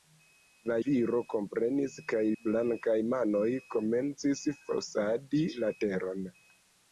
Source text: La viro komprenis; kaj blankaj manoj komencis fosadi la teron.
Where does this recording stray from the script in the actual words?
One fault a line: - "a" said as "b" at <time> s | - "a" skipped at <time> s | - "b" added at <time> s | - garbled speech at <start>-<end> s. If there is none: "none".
none